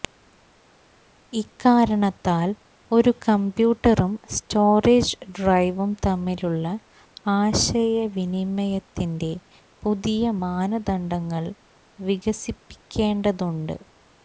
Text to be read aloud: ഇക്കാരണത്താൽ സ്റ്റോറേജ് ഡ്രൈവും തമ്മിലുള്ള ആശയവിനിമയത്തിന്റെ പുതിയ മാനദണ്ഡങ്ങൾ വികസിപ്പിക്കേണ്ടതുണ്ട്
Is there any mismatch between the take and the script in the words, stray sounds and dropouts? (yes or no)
yes